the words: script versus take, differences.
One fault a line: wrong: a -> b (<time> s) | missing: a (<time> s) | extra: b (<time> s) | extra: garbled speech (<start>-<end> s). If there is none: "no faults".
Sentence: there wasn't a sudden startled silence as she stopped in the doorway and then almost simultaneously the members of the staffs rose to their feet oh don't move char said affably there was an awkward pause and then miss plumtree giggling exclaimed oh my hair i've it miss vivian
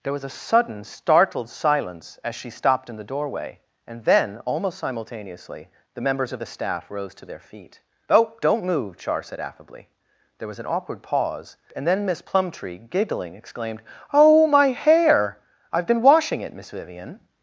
wrong: wasn't -> was (0.1 s)
wrong: staffs -> staff (6.5 s)
extra: been washing (15.9 s)